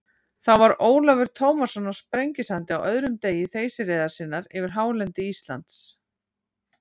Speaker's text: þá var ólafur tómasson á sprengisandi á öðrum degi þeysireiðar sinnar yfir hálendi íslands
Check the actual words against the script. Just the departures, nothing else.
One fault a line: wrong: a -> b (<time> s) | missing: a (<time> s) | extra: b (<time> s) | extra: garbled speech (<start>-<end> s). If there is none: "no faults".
no faults